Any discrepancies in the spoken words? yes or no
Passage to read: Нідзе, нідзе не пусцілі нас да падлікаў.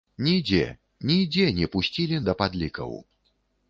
yes